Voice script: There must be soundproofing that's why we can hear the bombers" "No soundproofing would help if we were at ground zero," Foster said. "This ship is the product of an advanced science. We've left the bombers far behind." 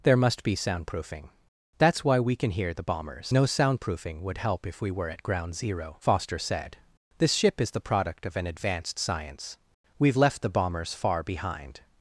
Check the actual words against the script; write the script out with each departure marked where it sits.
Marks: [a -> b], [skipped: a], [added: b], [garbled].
There must be soundproofing that's why we can hear the bombers" "No soundproofing would help if we were at ground zero," Foster said. "This ship is the product of an advanced science. We've left the bombers far behind."